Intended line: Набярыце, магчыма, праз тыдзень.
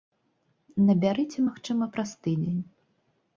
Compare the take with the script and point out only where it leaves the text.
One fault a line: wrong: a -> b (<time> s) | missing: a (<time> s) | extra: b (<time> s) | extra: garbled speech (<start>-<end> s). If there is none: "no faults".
no faults